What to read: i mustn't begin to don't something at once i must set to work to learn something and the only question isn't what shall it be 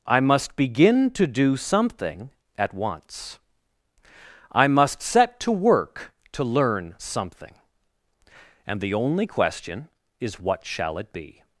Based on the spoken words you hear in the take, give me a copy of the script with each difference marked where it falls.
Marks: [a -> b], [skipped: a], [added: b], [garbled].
i [mustn't -> must] begin to [don't -> do] something at once i must set to work to learn something and the only question [isn't -> is] what shall it be